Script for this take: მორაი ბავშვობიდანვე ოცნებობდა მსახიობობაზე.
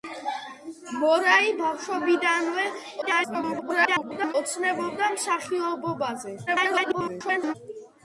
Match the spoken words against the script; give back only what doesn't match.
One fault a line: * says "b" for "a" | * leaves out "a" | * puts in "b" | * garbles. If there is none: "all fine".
* garbles
* garbles